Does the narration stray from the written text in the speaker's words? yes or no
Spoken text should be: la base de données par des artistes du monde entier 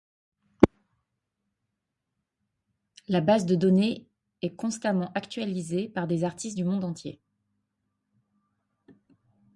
yes